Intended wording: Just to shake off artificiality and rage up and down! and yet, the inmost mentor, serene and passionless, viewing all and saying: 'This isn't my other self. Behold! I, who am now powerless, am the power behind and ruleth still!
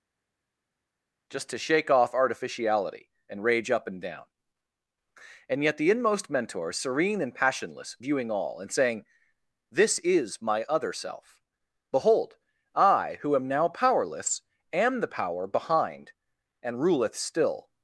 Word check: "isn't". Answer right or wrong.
wrong